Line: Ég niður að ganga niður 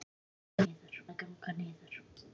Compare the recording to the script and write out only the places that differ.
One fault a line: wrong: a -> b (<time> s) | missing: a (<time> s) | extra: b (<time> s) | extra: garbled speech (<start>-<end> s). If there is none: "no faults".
no faults